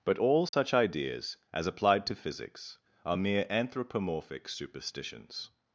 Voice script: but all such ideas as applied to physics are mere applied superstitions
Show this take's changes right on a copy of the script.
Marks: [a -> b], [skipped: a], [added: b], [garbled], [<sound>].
but all such [dropout] ideas as applied to physics are mere [applied -> anthropomorphic] superstitions